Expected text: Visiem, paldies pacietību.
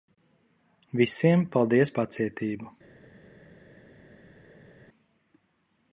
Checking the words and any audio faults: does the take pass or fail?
pass